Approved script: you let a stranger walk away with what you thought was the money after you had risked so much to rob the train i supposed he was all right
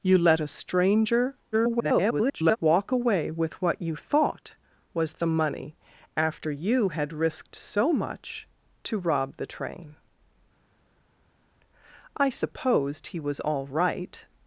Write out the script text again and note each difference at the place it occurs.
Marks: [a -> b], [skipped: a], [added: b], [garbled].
you let a stranger [garbled] walk away with what you thought was the money after you had risked so much to rob the train i supposed he was all right